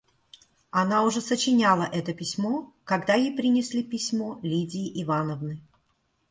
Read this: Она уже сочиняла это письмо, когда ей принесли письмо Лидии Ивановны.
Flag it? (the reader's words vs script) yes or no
no